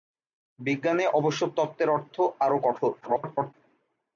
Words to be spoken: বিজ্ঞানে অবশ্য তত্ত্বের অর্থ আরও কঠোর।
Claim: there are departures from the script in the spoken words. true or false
true